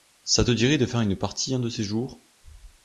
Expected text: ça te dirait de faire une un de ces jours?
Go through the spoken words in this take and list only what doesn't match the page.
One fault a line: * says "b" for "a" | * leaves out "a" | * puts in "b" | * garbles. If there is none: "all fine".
* puts in "partie"